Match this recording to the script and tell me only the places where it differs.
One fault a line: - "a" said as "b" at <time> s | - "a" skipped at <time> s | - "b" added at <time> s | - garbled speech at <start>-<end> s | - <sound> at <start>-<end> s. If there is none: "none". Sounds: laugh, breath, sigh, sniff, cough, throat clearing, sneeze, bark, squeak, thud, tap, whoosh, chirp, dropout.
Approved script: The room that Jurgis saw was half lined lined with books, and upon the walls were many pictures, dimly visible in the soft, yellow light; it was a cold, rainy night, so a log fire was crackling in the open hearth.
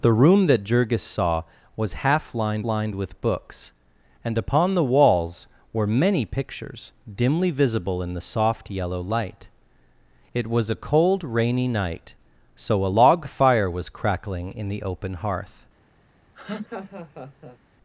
- laugh at 16.3-17.6 s